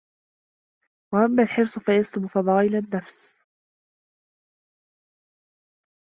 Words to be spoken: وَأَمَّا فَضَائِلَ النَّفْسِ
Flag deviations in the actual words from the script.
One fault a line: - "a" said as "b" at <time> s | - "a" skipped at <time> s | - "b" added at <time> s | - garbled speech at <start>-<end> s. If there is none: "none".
- "الْحِرْصُ فَيَسْلُبُ" added at 1.4 s